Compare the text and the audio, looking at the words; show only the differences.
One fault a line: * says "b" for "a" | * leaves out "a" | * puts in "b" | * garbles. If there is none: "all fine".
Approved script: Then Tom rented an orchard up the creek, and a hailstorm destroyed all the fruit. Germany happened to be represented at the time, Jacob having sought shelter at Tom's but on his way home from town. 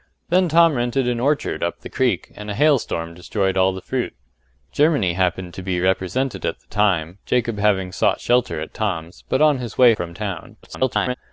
* leaves out "home"
* garbles